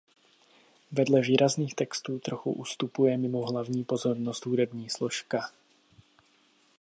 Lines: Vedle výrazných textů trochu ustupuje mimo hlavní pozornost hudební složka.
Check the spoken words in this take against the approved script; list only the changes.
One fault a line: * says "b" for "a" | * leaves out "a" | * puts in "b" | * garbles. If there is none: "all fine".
all fine